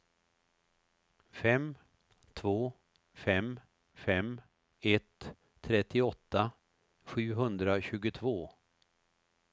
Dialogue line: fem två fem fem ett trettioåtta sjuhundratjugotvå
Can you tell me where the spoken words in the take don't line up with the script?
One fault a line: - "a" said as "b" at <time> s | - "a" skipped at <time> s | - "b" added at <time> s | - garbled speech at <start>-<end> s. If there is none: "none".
none